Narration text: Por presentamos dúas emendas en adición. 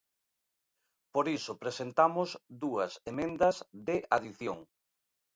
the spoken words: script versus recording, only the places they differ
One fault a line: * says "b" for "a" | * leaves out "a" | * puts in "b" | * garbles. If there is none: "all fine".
* puts in "iso"
* says "de" for "en"